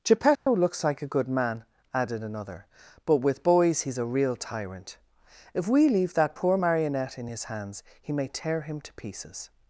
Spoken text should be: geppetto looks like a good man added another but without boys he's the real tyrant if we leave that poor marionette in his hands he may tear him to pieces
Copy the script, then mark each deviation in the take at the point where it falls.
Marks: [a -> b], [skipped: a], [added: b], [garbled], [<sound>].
geppetto [dropout] looks like a good man added another but [without -> with] boys he's [the -> a] real tyrant if we leave that poor marionette in his hands he may tear him to pieces